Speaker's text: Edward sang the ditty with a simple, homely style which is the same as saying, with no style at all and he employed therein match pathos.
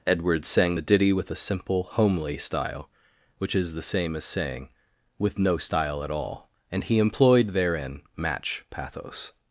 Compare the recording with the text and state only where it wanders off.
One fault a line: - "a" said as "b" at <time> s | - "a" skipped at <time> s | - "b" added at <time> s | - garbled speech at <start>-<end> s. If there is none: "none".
none